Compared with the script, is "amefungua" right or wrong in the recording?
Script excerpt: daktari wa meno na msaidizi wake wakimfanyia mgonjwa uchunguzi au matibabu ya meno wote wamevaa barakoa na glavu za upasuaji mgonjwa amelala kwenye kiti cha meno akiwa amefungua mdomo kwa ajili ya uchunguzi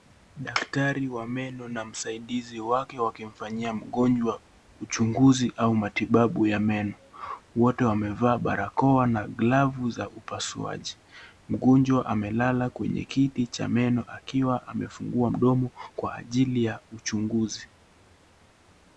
right